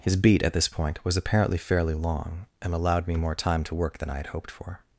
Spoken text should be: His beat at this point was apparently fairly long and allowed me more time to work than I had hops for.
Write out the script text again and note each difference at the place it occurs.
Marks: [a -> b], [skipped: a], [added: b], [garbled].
His beat at this point was apparently fairly long and allowed me more time to work than I had [hops -> hoped] for.